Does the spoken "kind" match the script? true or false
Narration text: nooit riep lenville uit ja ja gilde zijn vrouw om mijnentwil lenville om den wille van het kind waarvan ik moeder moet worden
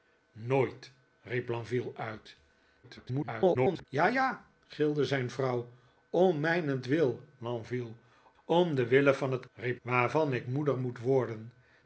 false